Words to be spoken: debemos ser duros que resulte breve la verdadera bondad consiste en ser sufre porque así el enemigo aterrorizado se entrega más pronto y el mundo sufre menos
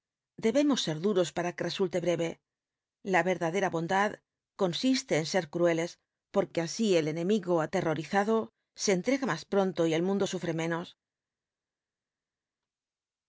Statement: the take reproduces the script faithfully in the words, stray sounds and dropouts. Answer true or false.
false